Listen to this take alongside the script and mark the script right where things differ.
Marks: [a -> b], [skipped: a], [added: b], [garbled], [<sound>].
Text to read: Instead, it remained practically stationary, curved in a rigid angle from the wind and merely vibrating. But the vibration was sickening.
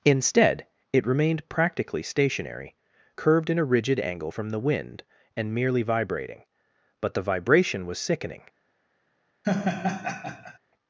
Instead, it remained practically stationary, curved in a rigid angle from the wind and merely vibrating. But the vibration was sickening. [laugh]